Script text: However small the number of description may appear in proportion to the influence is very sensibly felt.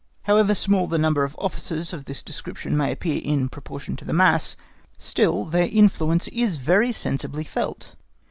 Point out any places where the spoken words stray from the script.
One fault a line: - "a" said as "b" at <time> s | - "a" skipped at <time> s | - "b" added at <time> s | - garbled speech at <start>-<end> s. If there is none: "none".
- "officers of this" added at 1.4 s
- "mass still their" added at 4.1 s